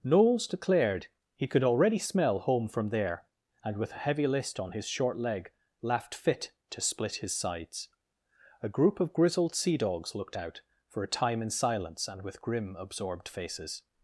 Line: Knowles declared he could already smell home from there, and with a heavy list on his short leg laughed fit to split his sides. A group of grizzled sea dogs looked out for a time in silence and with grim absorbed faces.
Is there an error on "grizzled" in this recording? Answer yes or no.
no